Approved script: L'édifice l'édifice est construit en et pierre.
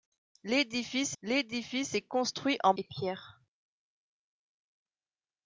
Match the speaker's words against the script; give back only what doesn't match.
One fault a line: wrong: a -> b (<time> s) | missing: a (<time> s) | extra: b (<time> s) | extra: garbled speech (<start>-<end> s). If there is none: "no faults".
no faults